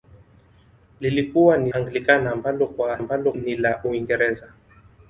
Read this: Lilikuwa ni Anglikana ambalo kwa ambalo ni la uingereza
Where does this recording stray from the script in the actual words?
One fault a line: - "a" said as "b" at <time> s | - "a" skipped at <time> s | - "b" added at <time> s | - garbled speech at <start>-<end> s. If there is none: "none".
none